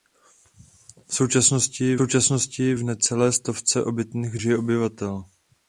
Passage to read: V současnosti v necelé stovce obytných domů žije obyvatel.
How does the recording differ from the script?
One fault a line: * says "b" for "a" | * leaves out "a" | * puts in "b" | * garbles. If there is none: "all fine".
* puts in "současnosti"
* leaves out "domů"